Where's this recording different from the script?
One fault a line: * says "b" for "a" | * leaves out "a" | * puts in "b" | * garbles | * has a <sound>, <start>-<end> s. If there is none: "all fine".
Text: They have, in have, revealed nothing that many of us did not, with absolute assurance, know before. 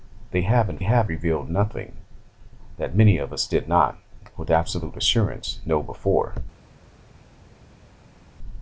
all fine